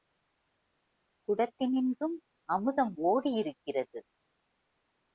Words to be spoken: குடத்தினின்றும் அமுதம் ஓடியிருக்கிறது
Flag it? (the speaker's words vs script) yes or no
no